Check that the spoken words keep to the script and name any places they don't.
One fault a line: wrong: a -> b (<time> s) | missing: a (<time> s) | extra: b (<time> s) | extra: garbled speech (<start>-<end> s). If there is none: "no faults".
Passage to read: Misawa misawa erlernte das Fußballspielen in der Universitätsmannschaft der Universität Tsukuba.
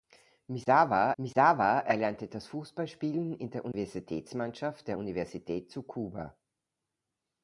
no faults